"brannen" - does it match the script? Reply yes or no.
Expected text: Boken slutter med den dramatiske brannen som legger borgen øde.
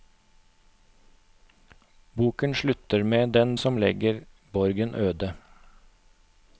no